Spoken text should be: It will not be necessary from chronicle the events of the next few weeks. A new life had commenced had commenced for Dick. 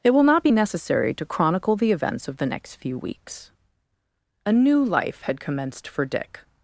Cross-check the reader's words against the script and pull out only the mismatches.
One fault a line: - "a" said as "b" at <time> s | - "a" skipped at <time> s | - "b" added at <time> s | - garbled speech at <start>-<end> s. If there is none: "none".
- "from" said as "to" at 1.1 s
- "had commenced" skipped at 5.9 s